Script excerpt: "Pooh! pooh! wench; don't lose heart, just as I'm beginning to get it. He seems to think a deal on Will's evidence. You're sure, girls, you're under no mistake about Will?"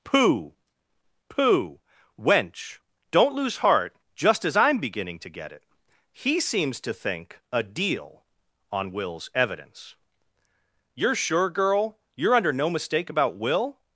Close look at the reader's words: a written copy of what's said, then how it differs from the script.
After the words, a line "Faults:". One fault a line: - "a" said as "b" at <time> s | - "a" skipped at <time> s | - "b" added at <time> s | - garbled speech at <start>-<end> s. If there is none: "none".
"Pooh! pooh! wench; don't lose heart, just as I'm beginning to get it. He seems to think a deal on Will's evidence. You're sure, girl, you're under no mistake about Will?"
Faults:
- "girls" said as "girl" at 11.5 s